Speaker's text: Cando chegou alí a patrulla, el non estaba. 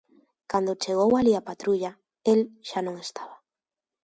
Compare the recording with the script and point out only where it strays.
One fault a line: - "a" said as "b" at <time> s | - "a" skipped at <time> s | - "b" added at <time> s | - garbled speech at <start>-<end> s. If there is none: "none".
- "xa" added at 2.7 s